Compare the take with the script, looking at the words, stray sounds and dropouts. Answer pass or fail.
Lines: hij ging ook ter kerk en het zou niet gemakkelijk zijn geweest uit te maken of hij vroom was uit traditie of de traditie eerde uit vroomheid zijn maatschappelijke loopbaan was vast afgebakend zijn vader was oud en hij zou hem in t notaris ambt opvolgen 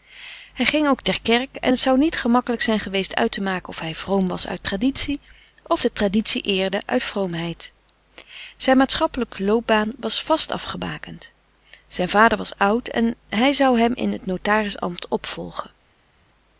pass